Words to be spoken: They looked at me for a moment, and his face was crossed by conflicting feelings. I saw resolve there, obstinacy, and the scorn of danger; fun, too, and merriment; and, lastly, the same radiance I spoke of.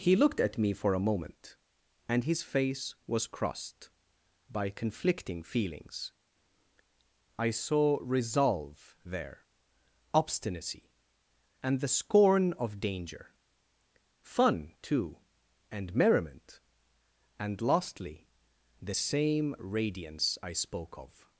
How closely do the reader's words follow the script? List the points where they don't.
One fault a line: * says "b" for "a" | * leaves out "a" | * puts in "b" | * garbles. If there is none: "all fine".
* says "He" for "They"